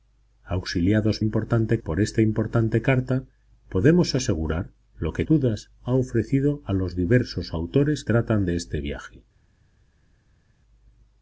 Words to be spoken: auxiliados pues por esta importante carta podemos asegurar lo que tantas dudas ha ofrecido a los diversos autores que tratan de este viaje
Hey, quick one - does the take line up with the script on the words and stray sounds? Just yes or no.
no